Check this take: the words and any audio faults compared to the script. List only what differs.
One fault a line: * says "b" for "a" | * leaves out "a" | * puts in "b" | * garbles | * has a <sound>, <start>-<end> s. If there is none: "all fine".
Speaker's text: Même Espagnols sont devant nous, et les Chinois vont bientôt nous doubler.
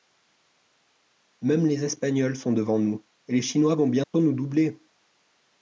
* puts in "les"
* has a dropout, 4.0-4.1 s